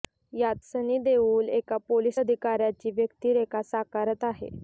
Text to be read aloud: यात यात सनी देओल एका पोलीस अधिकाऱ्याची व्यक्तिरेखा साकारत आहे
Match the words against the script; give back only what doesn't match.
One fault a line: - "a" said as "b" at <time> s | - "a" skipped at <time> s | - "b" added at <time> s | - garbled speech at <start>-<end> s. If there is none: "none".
- "यात" skipped at 0.6 s